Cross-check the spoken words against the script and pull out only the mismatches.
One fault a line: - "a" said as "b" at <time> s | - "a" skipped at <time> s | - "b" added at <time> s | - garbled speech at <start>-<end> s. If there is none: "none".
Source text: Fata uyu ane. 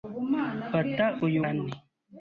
none